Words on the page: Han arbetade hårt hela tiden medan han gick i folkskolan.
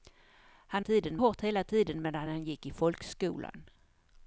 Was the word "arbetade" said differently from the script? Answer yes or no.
yes